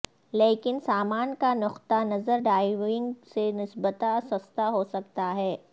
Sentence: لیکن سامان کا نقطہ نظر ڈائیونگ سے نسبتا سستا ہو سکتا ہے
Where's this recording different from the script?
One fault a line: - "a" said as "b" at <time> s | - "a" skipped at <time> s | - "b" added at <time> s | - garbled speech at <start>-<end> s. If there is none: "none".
none